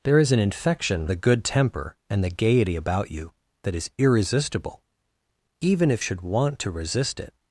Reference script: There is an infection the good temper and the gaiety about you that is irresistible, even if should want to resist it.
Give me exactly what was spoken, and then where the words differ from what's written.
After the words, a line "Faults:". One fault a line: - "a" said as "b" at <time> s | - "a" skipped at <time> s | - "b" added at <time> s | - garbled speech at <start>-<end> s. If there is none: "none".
There is an infection the good temper and the gaiety about you that is irresistible, even if should want to resist it.
Faults:
none